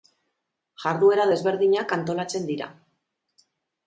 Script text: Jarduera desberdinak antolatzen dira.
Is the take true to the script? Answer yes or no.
yes